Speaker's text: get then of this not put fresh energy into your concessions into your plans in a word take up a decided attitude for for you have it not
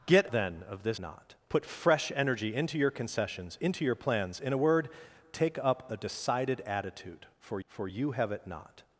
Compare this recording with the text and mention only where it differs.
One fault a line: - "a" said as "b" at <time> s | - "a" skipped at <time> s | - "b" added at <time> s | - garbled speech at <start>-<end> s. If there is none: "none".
none